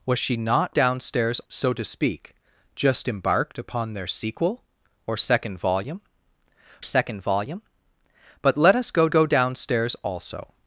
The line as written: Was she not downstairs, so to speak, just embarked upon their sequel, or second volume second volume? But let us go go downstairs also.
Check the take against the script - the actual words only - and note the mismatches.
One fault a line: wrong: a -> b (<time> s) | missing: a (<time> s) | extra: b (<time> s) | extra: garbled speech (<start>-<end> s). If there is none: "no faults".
no faults